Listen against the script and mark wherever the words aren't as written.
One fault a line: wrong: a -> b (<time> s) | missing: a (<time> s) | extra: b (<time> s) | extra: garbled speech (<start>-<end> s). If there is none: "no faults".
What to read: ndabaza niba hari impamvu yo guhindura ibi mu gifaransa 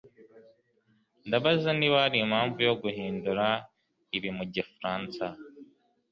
no faults